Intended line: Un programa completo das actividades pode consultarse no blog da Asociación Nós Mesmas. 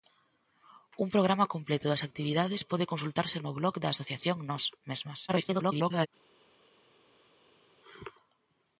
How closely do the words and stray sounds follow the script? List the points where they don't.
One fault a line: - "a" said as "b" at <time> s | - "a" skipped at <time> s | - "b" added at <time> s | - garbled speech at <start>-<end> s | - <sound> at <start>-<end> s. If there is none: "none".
- garbled speech at 5.3-6.1 s